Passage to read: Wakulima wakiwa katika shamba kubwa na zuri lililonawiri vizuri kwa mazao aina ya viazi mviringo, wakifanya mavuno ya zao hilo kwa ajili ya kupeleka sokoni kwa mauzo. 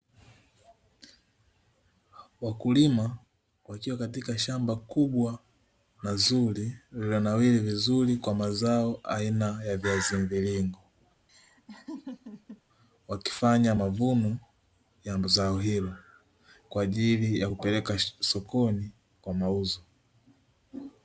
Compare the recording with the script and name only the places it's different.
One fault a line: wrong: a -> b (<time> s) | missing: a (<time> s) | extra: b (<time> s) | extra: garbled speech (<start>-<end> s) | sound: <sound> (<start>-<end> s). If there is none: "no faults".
sound: laugh (11.3-12.6 s)